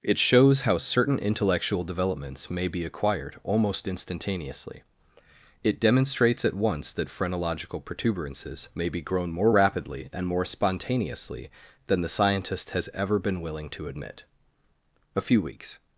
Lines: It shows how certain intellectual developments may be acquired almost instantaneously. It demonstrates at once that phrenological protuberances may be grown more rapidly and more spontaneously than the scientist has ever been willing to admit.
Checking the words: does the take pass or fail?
fail